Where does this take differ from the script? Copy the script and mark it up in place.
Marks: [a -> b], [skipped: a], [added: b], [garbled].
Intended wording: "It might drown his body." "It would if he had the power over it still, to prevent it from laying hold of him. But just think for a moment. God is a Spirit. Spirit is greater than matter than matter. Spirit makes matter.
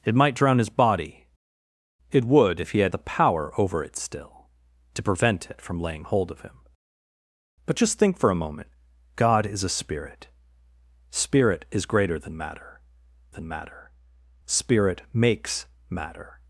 "It might drown his body." "It would if he had the power over it still, to prevent it from laying hold of him. But just think for a moment. God is a Spirit. Spirit is greater than matter than matter. Spirit makes matter.